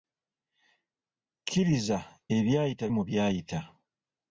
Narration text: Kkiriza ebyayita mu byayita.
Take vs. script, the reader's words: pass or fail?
pass